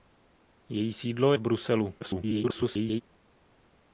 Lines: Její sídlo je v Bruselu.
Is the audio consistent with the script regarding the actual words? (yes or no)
no